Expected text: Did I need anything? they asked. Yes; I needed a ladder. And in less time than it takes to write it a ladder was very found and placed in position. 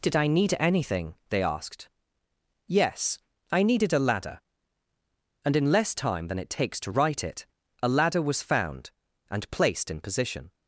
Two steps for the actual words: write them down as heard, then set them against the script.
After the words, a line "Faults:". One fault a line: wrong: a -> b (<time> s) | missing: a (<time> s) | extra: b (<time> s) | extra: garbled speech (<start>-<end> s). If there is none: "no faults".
Did I need anything? they asked. Yes; I needed a ladder. And in less time than it takes to write it a ladder was found and placed in position.
Faults:
missing: very (8.4 s)